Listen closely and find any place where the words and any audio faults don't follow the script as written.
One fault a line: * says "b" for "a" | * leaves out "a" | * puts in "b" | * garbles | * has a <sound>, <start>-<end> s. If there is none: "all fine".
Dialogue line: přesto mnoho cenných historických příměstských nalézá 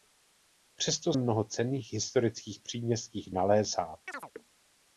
* has a chirp, 4.1-4.3 s